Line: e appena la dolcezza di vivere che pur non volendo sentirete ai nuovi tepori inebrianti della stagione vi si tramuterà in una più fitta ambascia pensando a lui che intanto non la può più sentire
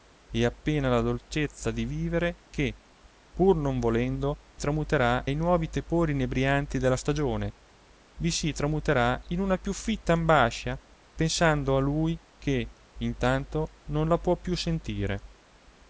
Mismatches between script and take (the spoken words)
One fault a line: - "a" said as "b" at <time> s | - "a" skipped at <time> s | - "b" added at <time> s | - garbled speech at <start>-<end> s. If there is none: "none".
- "sentirete" said as "tramuterà" at 4.6 s